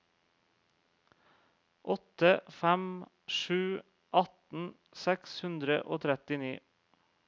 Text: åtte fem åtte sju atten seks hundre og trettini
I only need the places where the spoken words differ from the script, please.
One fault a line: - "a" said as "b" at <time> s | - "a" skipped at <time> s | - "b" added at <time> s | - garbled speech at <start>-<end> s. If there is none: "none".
- "åtte" skipped at 3.0 s